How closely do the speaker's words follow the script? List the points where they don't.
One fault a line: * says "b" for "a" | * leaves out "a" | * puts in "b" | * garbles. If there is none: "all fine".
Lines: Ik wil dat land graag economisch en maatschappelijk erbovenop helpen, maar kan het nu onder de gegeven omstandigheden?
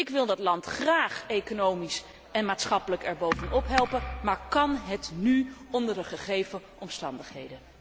all fine